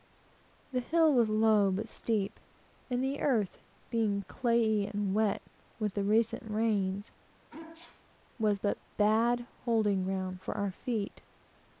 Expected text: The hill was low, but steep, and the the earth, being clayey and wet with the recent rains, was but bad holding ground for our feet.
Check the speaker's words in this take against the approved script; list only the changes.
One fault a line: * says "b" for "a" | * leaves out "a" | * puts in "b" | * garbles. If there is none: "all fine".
* leaves out "the"